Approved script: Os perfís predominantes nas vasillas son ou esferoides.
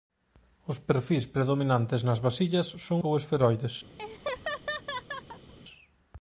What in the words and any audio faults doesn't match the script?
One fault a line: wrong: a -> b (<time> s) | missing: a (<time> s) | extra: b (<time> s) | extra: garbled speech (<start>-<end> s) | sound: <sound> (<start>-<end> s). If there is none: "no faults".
sound: laugh (4.0-5.5 s)